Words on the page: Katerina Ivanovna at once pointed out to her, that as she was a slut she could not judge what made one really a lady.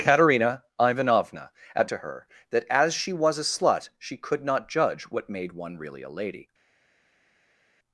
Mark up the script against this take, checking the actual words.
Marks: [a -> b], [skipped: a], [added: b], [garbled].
Katerina Ivanovna at [skipped: once pointed out] to her, that as she was a slut she could not judge what made one really a lady.